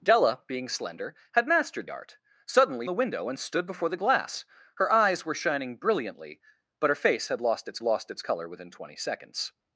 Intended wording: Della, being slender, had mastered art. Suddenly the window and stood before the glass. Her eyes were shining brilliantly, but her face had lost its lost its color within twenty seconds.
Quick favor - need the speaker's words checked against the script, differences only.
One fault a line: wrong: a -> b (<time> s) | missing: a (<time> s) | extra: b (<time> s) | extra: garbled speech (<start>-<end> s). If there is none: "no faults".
no faults